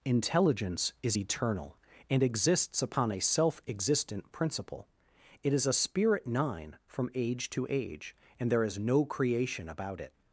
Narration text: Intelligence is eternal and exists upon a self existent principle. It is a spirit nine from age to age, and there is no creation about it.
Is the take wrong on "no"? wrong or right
right